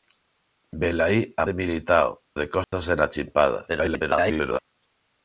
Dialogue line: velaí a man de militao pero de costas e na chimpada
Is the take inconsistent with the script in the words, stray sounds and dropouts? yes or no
yes